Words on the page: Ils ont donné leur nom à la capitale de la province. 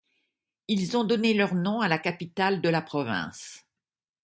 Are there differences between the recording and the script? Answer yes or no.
no